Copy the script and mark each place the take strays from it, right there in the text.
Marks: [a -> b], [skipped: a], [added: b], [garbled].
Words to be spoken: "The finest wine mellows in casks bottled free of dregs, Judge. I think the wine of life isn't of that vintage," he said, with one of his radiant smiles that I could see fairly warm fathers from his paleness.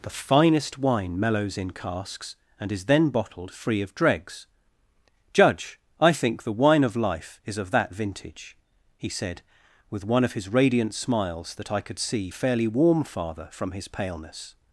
"The finest wine mellows in casks [added: and is then] bottled free of dregs, Judge. I think the wine of life [isn't -> is] of that vintage," he said, with one of his radiant smiles that I could see fairly warm [fathers -> father] from his paleness.